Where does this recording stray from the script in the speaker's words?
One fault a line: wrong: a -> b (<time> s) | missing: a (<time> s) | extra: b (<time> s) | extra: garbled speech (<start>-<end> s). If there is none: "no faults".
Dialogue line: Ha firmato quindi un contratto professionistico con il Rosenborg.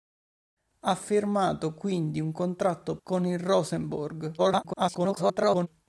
missing: professionistico (3.0 s)
extra: garbled speech (4.4-5.7 s)